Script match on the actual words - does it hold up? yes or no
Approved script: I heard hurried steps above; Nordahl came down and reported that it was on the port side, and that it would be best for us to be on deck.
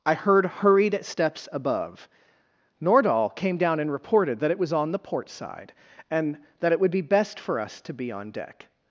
yes